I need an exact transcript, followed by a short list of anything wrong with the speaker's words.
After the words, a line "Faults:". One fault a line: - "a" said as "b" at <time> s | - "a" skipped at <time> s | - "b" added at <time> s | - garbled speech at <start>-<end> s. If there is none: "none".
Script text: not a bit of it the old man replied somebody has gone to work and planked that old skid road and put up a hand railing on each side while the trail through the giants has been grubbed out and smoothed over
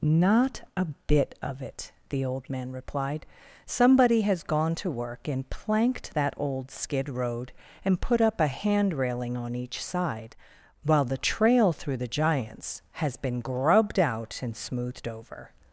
not a bit of it the old man replied somebody has gone to work and planked that old skid road and put up a hand railing on each side while the trail through the giants has been grubbed out and smoothed over
Faults:
none